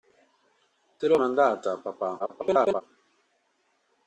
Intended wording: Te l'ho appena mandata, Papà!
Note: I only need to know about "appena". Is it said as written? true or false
false